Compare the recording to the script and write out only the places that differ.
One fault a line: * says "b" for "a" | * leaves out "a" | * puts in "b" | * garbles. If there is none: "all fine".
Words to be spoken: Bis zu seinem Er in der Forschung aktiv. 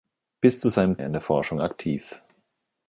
all fine